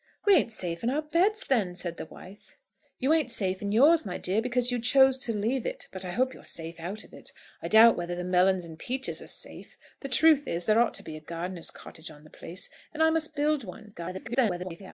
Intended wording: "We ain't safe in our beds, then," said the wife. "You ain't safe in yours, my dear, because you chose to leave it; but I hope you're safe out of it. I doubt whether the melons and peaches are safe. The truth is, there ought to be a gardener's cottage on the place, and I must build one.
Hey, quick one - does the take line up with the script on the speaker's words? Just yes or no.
no